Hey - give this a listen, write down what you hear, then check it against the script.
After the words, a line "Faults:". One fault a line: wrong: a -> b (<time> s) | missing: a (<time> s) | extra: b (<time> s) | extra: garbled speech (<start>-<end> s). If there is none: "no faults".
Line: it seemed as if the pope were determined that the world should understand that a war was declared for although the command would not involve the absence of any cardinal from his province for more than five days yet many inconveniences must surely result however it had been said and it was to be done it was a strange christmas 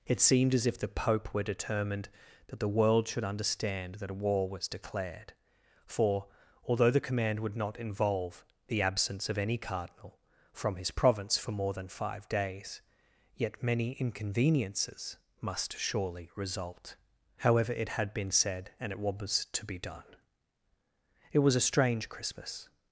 it seemed as if the pope were determined that the world should understand that a war was declared for although the command would not involve the absence of any cardinal from his province for more than five days yet many inconveniences must surely result however it had been said and it was to be done it was a strange christmas
Faults:
no faults